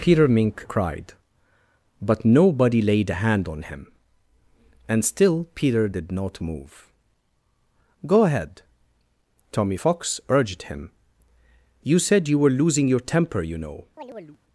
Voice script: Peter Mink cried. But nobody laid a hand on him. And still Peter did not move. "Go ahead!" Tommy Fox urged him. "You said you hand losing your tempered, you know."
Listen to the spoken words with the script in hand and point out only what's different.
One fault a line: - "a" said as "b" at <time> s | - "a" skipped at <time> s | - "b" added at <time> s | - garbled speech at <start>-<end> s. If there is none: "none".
- "hand" said as "were" at 12.4 s
- "tempered" said as "temper" at 13.0 s